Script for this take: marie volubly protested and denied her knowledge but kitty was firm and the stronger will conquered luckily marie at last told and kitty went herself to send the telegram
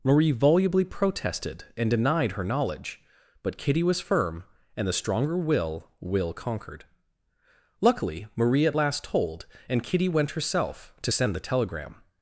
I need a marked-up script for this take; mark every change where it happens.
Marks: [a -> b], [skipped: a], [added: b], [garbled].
marie volubly protested and denied her knowledge but kitty was firm and the stronger will [added: will] conquered luckily marie at last told and kitty went herself to send the telegram